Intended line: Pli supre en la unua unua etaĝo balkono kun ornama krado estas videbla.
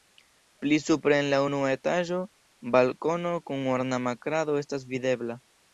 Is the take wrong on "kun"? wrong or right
right